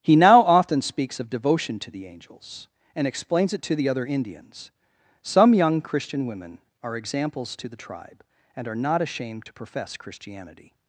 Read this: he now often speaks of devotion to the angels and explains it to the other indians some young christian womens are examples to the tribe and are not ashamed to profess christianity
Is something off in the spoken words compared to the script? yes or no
yes